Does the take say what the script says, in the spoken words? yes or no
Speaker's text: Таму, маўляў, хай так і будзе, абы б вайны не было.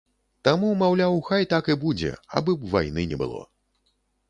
yes